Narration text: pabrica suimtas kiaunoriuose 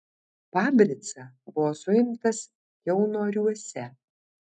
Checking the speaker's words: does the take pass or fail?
fail